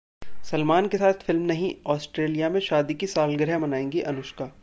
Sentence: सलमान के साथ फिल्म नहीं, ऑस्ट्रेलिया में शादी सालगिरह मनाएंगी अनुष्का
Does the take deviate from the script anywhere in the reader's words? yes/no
yes